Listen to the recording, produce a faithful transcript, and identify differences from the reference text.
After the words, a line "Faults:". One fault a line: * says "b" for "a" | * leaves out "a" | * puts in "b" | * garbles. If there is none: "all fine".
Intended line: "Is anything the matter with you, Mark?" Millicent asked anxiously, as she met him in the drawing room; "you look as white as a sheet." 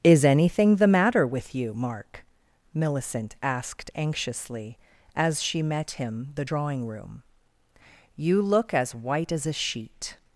"Is anything the matter with you, Mark?" Millicent asked anxiously, as she met him the drawing room; "you look as white as a sheet."
Faults:
* leaves out "in"